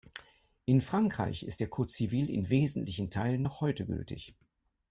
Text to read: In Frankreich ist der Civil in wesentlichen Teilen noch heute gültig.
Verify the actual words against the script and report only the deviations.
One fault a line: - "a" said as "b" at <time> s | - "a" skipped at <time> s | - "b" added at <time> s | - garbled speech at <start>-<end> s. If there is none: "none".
- "Code" added at 1.7 s